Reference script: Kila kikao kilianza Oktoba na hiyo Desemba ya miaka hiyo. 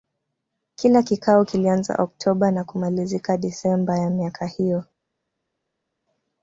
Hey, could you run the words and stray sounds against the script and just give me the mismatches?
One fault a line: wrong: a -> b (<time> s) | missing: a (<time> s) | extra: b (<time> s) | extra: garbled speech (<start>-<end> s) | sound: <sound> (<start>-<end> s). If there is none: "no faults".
wrong: hiyo -> kumalizika (2.6 s)